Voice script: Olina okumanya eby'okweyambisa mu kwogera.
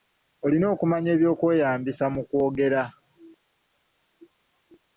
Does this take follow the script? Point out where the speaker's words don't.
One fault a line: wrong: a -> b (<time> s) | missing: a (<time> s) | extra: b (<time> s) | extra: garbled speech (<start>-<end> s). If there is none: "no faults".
no faults